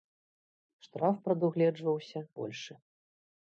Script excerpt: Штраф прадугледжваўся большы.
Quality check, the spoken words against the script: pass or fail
pass